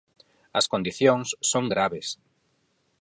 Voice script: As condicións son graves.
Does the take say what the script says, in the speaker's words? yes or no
yes